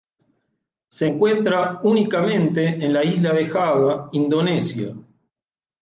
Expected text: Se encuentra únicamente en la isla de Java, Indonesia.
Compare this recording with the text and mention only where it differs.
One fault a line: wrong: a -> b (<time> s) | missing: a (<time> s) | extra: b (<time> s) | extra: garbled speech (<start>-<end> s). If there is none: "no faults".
no faults